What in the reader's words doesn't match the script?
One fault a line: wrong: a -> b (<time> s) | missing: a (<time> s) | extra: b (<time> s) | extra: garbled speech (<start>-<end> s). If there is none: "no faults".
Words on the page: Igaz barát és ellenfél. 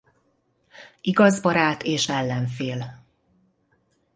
no faults